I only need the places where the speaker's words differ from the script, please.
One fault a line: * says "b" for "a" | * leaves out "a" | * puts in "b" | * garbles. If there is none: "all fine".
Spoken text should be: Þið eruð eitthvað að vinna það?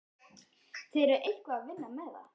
* puts in "með"